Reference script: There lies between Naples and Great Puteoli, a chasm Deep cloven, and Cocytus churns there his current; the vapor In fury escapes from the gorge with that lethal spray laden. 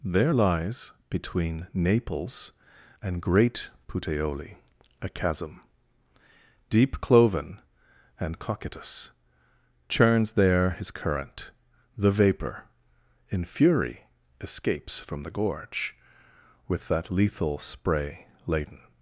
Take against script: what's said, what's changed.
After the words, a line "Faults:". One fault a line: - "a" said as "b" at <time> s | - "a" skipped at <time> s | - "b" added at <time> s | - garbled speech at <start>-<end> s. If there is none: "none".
There lies between Naples and Great Puteoli, a chasm Deep cloven, and Cocytus churns there his current; the vapor In fury escapes from the gorge with that lethal spray laden.
Faults:
none